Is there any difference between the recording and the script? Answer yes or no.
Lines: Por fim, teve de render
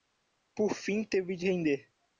no